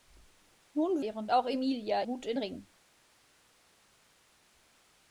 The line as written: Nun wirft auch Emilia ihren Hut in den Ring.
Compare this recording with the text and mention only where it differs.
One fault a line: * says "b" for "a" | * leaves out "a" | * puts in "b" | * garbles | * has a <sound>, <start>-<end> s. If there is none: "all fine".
* says "ihren" for "wirft"
* leaves out "ihren"
* leaves out "den"